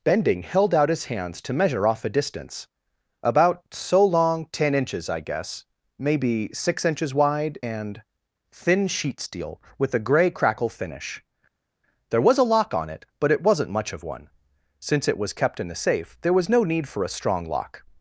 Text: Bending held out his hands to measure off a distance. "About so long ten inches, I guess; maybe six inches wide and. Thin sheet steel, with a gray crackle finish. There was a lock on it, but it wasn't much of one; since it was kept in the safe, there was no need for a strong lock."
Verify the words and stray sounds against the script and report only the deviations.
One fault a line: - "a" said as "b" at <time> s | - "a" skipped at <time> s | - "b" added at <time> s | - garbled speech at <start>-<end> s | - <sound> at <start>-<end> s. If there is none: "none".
none